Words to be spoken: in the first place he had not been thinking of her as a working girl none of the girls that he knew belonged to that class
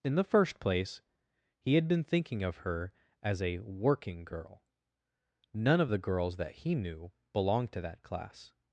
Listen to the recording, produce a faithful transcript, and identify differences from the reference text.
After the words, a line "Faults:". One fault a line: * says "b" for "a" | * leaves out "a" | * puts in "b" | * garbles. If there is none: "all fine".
in the first place he had been thinking of her as a working girl none of the girls that he knew belonged to that class
Faults:
* leaves out "not"